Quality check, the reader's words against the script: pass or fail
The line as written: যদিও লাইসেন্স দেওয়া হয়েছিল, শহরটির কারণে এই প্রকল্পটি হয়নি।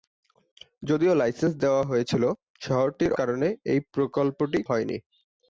pass